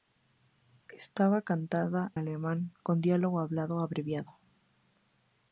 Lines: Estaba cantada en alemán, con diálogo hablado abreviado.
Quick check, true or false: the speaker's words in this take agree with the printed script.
false